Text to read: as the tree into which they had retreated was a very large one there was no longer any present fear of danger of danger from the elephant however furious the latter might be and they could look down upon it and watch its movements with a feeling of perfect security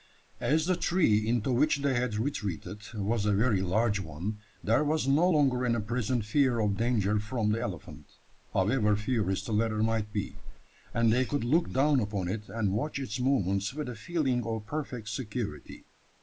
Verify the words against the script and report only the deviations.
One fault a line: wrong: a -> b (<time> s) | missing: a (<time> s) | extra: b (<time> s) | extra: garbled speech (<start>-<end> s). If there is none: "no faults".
missing: of danger (7.2 s)